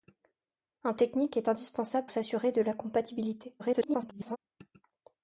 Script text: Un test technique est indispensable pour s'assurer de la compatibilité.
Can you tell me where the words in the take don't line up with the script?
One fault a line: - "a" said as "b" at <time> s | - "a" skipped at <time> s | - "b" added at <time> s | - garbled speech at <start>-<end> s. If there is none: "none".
- "test" skipped at 0.9 s
- "pour" skipped at 2.1 s
- garbled speech at 3.6-4.4 s